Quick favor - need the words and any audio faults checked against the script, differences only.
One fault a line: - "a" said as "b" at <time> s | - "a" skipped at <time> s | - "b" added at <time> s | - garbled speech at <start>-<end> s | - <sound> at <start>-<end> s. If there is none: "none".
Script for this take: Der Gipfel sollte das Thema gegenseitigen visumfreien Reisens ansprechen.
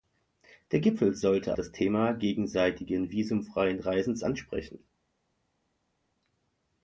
none